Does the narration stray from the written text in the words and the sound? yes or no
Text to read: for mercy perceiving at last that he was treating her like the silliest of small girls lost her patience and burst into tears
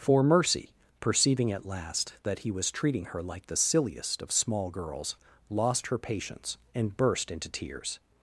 no